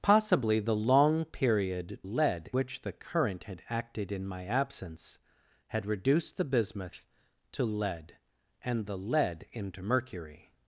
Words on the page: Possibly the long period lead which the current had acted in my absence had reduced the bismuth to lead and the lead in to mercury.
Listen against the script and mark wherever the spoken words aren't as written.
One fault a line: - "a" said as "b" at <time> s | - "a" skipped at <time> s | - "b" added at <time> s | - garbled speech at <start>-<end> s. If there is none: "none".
none